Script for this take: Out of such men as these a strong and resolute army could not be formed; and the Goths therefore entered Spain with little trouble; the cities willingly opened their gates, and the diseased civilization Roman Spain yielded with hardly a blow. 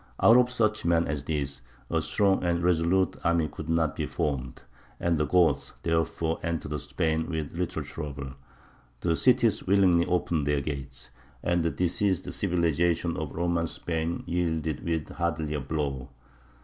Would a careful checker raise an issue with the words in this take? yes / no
yes